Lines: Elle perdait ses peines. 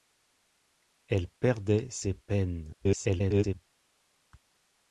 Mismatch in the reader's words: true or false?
true